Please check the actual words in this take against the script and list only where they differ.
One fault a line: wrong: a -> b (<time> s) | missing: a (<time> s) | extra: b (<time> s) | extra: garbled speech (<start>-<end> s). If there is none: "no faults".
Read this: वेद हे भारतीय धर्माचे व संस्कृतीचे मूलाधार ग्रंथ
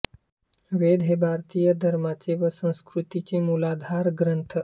no faults